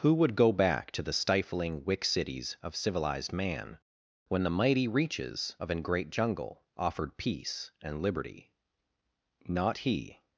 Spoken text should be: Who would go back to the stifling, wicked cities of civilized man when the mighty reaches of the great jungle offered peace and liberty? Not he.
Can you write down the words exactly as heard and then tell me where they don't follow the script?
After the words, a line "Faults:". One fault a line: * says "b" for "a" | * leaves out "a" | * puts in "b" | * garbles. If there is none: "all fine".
Who would go back to the stifling, wick cities of civilized man when the mighty reaches of an great jungle offered peace and liberty? Not he.
Faults:
* says "wick" for "wicked"
* says "an" for "the"